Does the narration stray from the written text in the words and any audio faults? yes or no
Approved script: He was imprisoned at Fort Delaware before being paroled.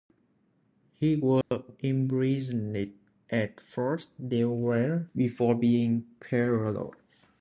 yes